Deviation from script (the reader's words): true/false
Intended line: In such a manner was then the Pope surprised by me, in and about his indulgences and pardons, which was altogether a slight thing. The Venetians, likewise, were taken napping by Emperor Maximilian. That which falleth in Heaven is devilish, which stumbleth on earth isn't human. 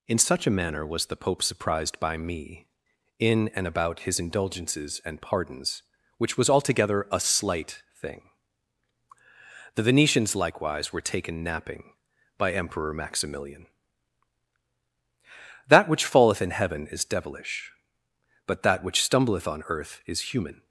true